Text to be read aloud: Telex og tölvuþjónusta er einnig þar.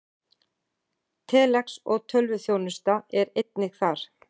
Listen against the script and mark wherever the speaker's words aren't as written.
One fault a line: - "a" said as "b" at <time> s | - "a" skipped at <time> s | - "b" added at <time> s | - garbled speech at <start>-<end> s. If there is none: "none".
none